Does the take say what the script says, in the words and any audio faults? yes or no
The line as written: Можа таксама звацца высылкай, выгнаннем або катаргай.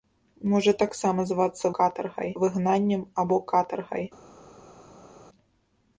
no